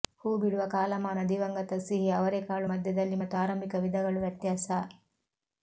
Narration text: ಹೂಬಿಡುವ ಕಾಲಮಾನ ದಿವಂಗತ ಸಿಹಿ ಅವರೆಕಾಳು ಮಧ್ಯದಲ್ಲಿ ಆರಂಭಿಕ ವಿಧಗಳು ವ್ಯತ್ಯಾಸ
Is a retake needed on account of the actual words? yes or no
yes